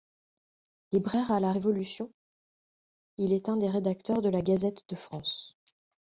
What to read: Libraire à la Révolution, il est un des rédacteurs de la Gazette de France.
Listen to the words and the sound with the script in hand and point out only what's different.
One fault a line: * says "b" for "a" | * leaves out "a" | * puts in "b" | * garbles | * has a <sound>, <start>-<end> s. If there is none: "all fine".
all fine